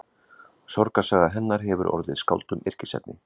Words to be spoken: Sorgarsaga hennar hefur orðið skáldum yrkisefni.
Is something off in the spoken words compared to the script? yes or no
no